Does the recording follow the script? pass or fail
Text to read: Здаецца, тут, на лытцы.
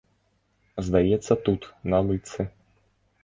pass